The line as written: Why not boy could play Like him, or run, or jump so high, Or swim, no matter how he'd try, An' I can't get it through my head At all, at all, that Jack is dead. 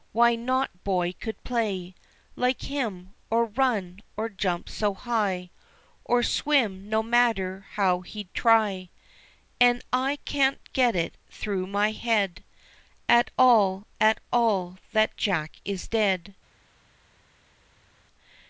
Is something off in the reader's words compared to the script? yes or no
no